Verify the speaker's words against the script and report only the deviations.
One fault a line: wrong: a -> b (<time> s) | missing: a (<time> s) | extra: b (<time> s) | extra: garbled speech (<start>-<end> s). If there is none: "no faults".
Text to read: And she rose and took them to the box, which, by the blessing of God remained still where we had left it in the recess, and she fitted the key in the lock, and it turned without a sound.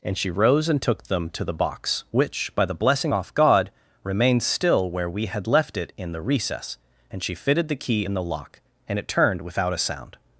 wrong: of -> off (3.1 s)